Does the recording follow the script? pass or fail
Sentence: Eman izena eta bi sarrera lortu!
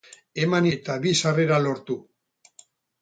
fail